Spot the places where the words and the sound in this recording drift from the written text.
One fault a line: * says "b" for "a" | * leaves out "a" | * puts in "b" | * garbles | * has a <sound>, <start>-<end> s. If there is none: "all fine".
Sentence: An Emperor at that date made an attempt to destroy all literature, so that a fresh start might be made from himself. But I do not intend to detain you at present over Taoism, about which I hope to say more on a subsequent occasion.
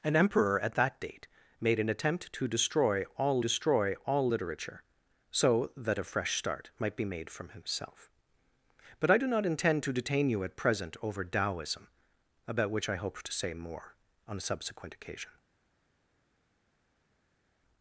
* puts in "destroy all"